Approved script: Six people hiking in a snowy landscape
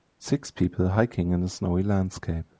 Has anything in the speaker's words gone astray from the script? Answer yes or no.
no